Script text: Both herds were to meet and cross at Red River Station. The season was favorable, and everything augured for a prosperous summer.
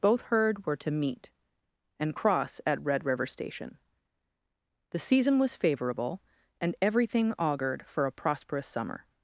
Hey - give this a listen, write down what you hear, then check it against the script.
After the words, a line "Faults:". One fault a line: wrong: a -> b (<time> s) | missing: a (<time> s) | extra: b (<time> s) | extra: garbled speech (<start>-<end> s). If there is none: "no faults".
Both herd were to meet and cross at Red River Station. The season was favorable, and everything augured for a prosperous summer.
Faults:
wrong: herds -> herd (0.2 s)